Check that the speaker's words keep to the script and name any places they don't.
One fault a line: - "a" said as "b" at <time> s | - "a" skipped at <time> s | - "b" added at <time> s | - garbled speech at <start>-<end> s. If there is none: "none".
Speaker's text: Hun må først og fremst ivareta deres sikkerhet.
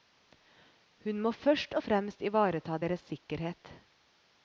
none